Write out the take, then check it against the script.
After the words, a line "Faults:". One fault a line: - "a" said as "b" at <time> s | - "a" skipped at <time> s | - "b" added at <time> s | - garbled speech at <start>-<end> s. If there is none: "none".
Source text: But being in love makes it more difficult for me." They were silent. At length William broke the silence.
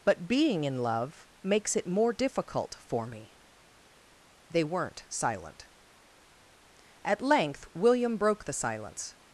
But being in love makes it more difficult for me." They weren't silent. At length William broke the silence.
Faults:
- "were" said as "weren't" at 4.6 s